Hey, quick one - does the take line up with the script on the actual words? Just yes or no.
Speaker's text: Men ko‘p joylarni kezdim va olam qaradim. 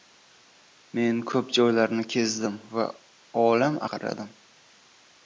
yes